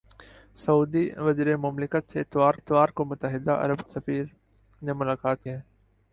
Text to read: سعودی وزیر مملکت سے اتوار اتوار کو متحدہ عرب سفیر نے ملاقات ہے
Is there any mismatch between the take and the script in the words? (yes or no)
no